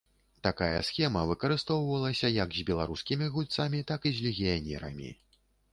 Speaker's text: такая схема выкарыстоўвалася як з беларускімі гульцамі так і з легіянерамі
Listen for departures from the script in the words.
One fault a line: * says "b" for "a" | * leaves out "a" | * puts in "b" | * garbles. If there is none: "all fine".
all fine